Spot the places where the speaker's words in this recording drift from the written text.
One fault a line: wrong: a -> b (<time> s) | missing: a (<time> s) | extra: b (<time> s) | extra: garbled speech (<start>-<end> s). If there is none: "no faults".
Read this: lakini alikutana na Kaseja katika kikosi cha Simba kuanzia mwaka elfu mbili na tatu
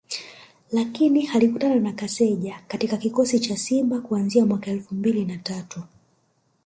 no faults